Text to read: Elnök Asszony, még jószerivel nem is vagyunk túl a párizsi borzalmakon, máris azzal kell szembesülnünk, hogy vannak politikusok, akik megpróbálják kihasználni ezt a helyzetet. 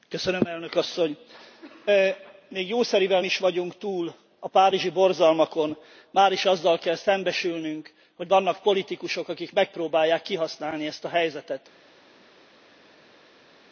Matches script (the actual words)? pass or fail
fail